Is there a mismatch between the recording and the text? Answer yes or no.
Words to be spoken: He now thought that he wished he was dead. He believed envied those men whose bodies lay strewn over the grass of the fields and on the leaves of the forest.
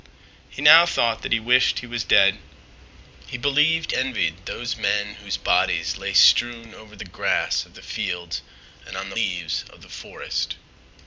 no